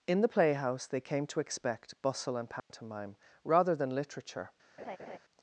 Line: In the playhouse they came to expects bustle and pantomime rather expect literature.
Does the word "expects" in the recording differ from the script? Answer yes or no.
yes